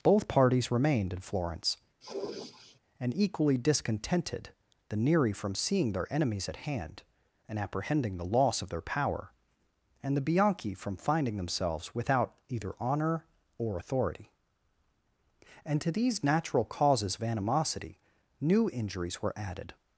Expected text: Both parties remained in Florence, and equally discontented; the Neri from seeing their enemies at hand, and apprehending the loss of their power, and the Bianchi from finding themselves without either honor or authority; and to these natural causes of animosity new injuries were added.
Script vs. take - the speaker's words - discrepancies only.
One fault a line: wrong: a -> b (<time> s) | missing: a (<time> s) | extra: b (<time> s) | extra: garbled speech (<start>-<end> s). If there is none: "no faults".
no faults